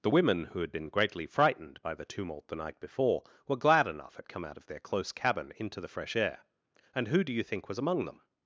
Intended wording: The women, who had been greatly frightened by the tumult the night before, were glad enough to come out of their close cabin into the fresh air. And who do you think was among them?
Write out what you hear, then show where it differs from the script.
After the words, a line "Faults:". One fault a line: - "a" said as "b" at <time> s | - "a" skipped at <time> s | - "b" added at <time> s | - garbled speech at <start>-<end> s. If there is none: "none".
The women, who had been greatly frightened by the tumult the night before, were glad enough at come out of their close cabin into the fresh air. And who do you think was among them?
Faults:
- "to" said as "at" at 4.2 s